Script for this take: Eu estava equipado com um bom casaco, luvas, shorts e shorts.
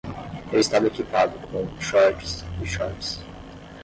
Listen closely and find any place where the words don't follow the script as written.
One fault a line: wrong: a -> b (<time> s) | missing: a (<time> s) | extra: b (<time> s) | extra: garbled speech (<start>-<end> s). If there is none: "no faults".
missing: bom casaco luvas (1.6 s)